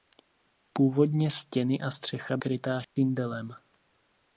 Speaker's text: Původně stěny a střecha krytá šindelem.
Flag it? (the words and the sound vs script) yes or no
yes